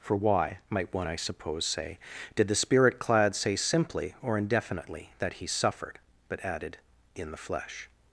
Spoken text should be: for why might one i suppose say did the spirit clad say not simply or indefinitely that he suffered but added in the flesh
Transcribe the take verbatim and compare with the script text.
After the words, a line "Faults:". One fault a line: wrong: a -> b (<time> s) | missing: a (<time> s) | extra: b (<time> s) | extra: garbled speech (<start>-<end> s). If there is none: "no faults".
for why might one i suppose say did the spirit clad say simply or indefinitely that he suffered but added in the flesh
Faults:
missing: not (3.5 s)